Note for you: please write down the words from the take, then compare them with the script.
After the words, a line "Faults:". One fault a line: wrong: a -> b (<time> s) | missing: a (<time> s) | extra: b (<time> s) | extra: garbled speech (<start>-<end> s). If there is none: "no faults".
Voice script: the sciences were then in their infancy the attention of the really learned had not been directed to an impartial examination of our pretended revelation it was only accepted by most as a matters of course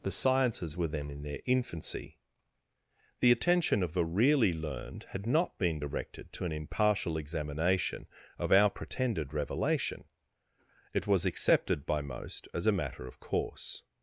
the sciences were then in their infancy the attention of the really learned had not been directed to an impartial examination of our pretended revelation it was accepted by most as a matter of course
Faults:
missing: only (11.2 s)
wrong: matters -> matter (12.7 s)